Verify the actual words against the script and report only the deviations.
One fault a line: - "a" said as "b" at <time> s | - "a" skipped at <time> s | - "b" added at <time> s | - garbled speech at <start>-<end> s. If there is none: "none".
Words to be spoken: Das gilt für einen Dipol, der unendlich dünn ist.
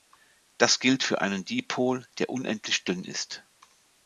none